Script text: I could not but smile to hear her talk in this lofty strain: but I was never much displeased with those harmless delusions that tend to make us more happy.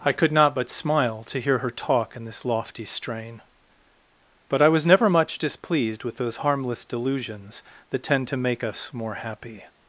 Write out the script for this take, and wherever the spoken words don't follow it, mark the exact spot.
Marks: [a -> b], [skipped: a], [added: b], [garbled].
I could not but smile to hear her talk in this lofty strain: but I was never much displeased with those harmless delusions that tend to make us more happy.